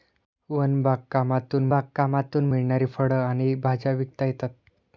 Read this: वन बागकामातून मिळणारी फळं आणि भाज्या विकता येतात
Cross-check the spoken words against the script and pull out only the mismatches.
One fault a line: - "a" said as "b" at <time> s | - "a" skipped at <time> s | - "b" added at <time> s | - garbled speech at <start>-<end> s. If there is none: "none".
- "बागकामातून" added at 1.7 s